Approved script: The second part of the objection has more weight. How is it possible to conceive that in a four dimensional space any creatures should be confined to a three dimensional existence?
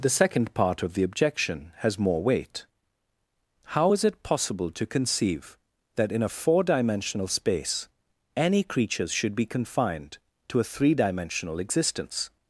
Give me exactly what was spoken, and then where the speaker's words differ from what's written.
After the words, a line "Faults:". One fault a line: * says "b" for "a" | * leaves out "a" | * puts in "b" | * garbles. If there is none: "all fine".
The second part of the objection has more weight. How is it possible to conceive that in a four dimensional space any creatures should be confined to a three dimensional existence?
Faults:
all fine